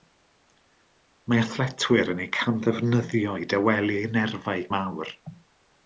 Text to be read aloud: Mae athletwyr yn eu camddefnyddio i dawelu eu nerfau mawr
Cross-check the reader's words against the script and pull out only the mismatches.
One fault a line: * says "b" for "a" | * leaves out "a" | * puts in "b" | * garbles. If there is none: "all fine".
all fine